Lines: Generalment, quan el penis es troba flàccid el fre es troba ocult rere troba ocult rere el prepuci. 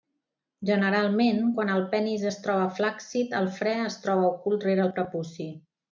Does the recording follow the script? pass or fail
fail